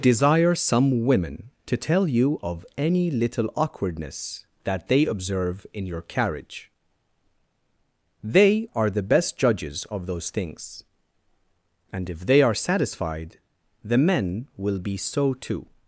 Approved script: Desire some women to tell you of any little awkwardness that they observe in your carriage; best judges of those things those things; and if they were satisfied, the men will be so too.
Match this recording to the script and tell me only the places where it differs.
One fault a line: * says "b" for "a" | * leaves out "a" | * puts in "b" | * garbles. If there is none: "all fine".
* puts in "they are the"
* leaves out "those things"
* says "are" for "were"